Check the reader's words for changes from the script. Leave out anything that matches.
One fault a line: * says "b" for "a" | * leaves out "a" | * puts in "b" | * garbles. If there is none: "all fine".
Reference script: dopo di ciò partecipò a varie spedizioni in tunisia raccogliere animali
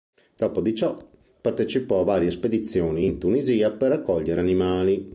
* puts in "per"